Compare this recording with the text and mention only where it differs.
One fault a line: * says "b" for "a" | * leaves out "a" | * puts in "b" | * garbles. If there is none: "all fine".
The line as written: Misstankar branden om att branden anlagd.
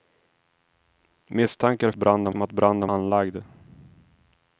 all fine